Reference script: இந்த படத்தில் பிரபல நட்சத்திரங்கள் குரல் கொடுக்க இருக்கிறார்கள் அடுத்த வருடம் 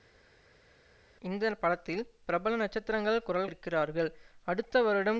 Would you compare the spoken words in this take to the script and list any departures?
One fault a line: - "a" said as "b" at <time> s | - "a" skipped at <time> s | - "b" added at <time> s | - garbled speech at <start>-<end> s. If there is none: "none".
- "கொடுக்க" skipped at 3.5 s